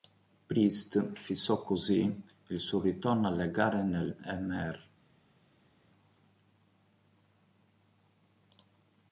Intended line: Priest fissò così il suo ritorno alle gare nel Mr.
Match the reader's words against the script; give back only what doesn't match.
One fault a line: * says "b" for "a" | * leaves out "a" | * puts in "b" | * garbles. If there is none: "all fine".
all fine